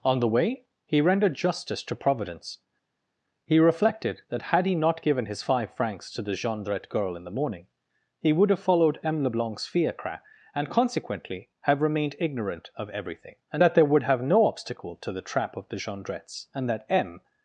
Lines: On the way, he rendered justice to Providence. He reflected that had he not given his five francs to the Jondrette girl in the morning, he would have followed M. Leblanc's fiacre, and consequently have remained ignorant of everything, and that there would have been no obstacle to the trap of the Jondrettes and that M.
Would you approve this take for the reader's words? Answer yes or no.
no